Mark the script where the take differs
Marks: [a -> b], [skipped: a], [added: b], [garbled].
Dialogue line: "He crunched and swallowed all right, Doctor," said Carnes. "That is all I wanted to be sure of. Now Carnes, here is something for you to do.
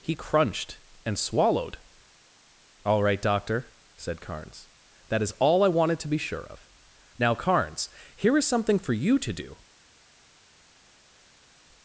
"He crunched and swallowed all right, Doctor," said Carnes. "That is all I wanted to be sure of. Now Carnes, here is something for you to do.